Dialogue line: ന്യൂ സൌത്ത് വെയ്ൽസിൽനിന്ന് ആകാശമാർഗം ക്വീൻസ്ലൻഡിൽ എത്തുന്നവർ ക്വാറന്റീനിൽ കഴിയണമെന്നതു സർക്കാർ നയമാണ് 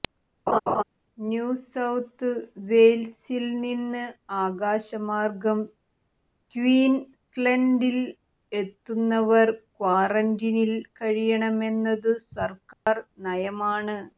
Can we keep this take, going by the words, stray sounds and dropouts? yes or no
no